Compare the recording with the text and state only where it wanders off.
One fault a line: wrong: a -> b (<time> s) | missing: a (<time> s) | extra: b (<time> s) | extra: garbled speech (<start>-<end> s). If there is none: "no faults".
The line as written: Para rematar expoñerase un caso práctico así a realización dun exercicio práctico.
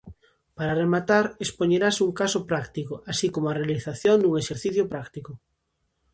extra: como (3.3 s)